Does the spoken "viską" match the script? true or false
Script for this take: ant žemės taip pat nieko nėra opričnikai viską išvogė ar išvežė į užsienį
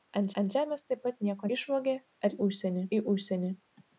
false